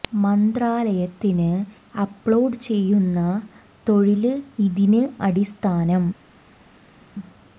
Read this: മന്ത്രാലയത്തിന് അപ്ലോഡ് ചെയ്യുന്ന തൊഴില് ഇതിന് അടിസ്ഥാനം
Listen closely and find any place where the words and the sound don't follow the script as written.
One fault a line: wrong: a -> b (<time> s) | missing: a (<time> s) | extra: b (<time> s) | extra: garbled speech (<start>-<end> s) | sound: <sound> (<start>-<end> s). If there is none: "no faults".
no faults